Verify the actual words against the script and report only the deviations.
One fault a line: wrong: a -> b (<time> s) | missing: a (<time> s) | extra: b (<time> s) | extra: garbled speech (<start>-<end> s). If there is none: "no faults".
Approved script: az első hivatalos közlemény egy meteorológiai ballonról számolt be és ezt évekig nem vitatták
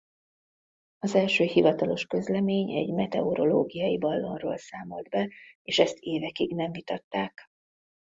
no faults